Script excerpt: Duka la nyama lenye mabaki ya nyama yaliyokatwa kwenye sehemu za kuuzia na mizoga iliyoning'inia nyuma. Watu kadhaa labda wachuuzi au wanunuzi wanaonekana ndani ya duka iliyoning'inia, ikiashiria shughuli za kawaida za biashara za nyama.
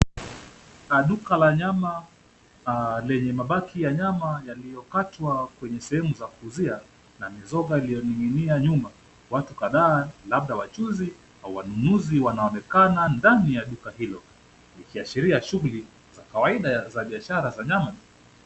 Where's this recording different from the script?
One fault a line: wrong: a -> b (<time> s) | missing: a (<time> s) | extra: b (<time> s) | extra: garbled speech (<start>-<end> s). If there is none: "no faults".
wrong: iliyoning'inia -> hilo (14.0 s)